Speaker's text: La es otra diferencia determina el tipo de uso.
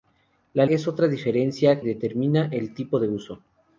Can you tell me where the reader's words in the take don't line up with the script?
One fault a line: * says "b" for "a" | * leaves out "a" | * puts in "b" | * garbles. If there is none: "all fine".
all fine